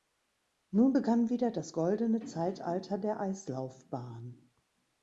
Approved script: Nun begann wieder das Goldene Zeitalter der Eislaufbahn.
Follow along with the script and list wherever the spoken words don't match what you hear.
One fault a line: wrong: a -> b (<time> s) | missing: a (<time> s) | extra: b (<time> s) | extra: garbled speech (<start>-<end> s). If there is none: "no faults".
no faults